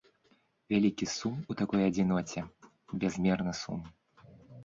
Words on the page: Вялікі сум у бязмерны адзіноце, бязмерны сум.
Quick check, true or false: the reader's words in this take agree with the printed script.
false